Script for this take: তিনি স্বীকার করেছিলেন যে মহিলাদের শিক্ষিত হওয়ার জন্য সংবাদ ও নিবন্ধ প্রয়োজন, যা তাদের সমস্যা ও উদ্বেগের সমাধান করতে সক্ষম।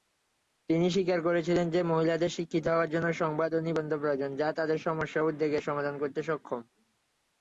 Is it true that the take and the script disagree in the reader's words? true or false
false